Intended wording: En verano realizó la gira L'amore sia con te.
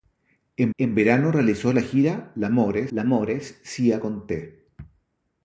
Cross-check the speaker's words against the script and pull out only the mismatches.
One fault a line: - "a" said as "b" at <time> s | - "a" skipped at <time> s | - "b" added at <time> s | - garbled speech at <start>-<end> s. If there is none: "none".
- "en" added at 0.8 s
- "L'amore" added at 2.9 s